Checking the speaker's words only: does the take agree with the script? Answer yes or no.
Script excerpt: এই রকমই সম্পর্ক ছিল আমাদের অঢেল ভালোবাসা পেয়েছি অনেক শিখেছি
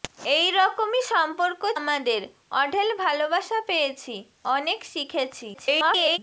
no